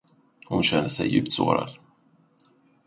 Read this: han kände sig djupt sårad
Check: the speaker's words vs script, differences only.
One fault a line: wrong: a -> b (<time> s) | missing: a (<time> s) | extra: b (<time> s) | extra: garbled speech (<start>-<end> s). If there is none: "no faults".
wrong: han -> hon (0.5 s)